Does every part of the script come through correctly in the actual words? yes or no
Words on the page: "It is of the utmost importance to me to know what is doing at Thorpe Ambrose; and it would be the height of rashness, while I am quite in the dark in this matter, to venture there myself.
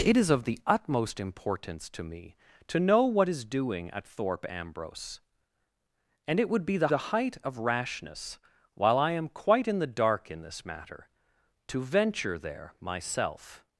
no